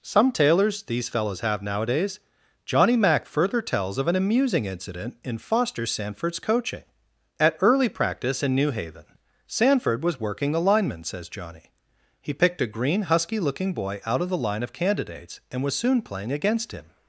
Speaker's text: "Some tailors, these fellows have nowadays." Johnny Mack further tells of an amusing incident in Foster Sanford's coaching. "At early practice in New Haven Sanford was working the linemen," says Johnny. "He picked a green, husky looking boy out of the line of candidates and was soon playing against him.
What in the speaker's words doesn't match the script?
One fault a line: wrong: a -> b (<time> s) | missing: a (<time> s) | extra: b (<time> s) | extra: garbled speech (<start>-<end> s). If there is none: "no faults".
no faults